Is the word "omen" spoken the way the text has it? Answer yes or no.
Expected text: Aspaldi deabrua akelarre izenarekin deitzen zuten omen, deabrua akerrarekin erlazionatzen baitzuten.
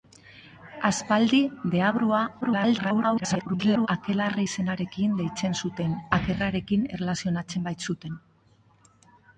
no